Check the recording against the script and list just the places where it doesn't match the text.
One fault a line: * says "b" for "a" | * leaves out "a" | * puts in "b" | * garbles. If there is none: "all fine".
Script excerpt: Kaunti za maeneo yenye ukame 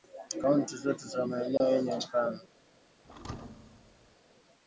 * puts in "zote"